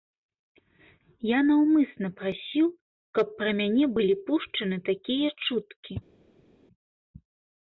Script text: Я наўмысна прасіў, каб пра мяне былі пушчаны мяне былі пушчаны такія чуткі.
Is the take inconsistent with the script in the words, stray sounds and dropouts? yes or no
yes